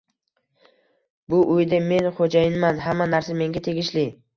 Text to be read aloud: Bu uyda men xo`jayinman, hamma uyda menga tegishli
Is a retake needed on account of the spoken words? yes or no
yes